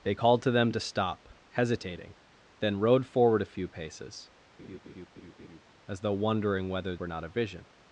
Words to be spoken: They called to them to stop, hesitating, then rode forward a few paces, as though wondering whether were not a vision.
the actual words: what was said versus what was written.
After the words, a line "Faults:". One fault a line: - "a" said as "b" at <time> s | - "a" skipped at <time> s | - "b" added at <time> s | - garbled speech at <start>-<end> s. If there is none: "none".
They called to them to stop, hesitating, then rode forward a few paces, as though wondering whether were not a vision.
Faults:
none